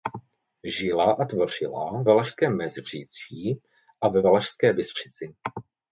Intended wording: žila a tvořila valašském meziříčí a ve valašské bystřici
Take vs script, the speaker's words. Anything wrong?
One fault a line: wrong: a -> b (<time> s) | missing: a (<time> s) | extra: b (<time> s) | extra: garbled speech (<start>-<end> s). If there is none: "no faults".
no faults